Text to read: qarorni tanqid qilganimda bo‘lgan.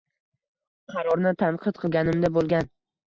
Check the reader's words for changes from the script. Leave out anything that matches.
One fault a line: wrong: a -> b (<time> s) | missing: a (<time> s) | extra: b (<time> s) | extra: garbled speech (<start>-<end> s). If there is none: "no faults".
no faults